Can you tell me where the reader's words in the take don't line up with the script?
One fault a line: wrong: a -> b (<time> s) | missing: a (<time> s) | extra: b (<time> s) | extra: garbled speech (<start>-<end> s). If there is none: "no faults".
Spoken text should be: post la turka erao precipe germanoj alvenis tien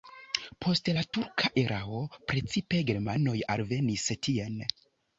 no faults